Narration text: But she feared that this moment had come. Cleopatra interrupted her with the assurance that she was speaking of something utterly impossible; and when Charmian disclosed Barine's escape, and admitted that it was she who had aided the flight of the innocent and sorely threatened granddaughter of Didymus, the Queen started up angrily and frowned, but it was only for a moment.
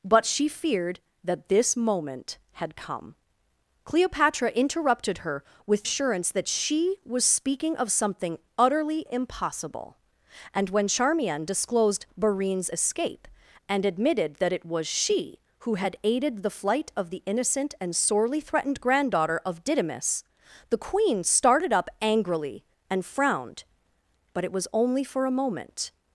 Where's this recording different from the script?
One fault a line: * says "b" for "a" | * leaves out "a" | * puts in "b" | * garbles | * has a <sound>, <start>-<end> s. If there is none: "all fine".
* leaves out "the"